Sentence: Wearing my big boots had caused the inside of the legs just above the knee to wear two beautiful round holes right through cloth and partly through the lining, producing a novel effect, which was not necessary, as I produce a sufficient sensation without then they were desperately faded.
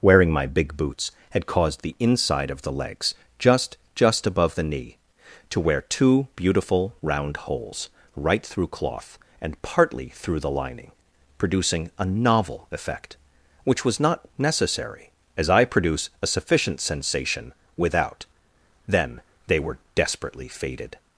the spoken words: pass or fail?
fail